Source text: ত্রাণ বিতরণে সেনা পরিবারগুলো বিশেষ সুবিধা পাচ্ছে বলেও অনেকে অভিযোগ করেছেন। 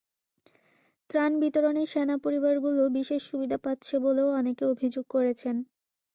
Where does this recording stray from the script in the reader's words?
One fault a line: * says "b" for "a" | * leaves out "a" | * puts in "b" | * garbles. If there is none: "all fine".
all fine